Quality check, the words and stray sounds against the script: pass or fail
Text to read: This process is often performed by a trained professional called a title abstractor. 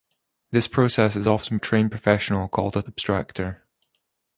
fail